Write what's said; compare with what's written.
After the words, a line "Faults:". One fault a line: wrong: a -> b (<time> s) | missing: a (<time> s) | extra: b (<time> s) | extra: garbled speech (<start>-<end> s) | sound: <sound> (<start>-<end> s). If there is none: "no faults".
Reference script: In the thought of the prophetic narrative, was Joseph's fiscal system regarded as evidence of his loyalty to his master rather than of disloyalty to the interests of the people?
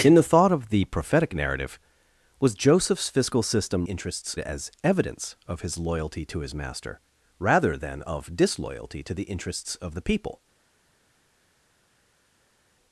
In the thought of the prophetic narrative, was Joseph's fiscal system interests as evidence of his loyalty to his master rather than of disloyalty to the interests of the people?
Faults:
wrong: regarded -> interests (3.8 s)